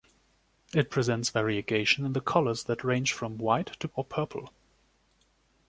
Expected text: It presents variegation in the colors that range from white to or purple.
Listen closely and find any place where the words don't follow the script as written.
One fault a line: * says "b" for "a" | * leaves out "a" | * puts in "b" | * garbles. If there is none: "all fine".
all fine